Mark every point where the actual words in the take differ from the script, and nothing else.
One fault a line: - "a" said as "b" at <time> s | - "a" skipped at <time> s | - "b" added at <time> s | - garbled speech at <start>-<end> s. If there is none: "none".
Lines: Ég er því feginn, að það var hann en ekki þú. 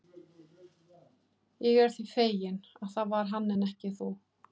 none